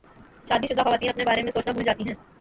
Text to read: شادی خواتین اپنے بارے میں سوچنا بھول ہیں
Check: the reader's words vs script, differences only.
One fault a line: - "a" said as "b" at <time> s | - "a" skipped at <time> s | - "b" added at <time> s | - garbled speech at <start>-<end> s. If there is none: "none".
- "شدہ" added at 0.7 s
- "جاتی" added at 1.8 s